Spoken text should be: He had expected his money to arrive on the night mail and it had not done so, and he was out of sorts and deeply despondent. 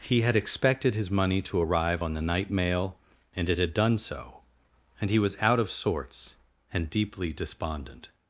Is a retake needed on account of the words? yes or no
yes